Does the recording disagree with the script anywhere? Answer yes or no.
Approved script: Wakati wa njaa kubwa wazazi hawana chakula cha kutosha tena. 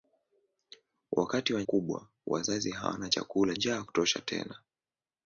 yes